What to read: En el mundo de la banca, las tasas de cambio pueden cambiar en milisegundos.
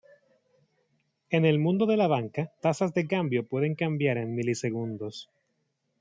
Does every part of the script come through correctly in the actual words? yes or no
no